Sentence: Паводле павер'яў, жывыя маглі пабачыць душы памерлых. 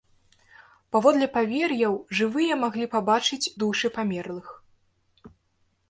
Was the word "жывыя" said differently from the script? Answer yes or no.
no